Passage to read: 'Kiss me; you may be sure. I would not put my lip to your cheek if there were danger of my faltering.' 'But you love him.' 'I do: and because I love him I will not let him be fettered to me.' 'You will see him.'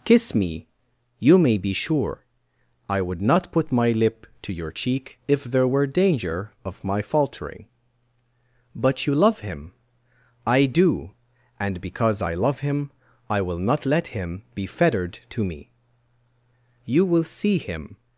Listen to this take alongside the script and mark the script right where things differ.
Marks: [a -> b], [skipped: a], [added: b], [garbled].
'Kiss me; you may be sure. I would not put my lip to your cheek if there were danger of my faltering.' 'But you love him.' 'I do: and because I love him I will not let him be fettered to me.' 'You will see him.'